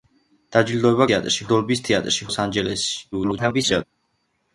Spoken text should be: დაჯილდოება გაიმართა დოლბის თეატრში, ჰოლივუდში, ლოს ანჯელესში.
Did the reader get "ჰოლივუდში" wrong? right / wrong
wrong